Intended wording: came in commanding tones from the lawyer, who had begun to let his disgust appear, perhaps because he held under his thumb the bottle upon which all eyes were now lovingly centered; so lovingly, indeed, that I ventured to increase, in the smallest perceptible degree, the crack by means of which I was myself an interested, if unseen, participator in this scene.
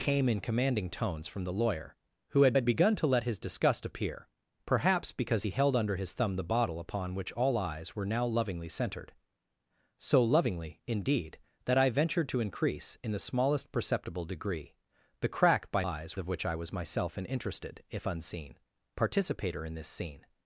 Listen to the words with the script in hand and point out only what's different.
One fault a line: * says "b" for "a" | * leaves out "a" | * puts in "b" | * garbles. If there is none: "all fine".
* puts in "had"
* says "eyes" for "means"